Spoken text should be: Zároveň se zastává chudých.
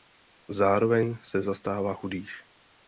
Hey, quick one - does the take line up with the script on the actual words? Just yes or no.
yes